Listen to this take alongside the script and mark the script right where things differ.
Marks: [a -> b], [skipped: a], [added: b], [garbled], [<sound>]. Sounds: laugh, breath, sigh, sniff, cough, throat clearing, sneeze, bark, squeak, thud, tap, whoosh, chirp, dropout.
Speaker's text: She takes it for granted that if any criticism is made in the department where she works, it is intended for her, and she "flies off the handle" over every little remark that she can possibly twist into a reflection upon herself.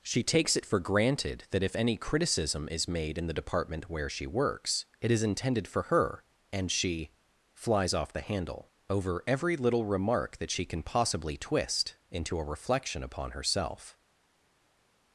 She takes it for granted that if any criticism is made in the department where she works, it is intended for her, and she "flies off the handle" over every little remark that she can possibly twist into a reflection upon herself.